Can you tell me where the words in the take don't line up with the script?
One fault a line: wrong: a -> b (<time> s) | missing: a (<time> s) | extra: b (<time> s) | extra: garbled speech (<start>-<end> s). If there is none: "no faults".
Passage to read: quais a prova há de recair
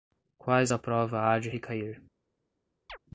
no faults